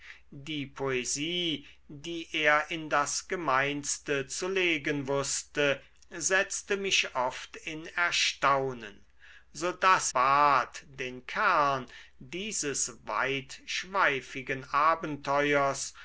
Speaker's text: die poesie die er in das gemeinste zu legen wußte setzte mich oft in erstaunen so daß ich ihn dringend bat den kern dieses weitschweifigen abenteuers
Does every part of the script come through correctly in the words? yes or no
no